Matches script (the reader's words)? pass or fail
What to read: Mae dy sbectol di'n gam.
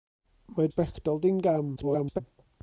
fail